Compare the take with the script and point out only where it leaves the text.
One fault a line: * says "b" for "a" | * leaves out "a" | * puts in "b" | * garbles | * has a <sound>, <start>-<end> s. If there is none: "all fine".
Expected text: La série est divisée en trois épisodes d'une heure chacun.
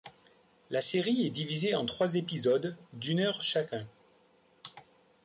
all fine